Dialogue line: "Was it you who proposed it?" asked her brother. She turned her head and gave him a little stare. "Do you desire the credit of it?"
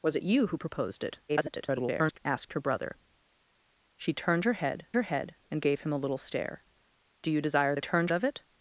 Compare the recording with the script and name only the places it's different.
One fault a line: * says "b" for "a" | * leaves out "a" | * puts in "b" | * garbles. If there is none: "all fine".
* garbles
* puts in "her head"
* says "turned" for "credit"